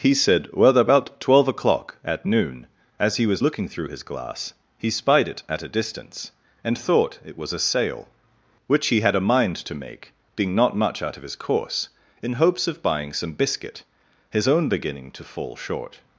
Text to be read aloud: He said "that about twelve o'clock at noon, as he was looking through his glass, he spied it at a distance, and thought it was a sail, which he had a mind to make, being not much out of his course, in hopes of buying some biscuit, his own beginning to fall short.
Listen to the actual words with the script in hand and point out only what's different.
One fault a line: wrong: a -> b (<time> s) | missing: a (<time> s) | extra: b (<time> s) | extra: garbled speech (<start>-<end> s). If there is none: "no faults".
wrong: that -> well (0.5 s)